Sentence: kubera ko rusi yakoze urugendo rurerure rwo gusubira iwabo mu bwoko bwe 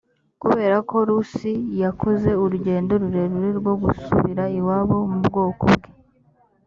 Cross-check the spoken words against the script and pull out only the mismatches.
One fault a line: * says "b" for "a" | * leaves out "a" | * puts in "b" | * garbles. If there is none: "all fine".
all fine